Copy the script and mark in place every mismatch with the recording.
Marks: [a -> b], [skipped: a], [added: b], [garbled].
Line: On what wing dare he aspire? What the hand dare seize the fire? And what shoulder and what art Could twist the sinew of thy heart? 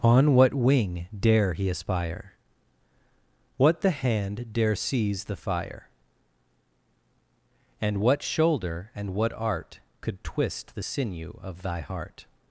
On what wing dare he aspire? What the hand dare seize the fire? And what shoulder and what art Could twist the sinew of thy heart?